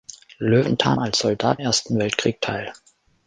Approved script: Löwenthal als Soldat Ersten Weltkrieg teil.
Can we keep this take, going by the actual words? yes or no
yes